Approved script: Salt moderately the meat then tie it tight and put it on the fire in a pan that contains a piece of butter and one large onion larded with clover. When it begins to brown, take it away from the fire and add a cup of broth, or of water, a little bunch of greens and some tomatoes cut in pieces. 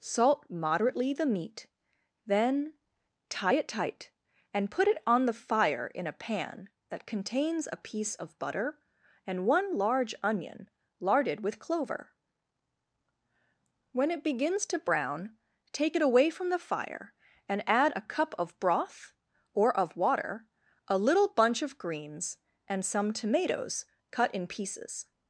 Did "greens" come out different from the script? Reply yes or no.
no